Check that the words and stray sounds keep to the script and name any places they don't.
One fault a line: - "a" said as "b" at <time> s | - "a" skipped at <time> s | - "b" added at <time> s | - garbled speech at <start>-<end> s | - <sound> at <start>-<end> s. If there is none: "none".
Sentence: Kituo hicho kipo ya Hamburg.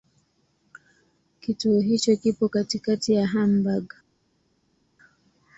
- "katikati" added at 2.5 s